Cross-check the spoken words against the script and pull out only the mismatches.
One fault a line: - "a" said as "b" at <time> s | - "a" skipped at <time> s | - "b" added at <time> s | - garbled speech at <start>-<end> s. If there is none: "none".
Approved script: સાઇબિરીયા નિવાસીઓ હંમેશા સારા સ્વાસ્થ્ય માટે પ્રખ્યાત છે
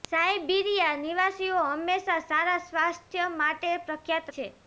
none